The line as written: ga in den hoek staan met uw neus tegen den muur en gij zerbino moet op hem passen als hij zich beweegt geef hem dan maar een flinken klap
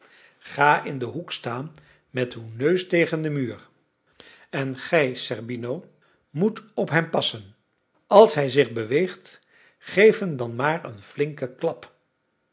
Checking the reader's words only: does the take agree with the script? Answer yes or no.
yes